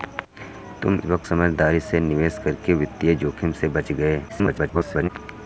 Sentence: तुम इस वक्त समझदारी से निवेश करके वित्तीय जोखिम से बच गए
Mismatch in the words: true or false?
true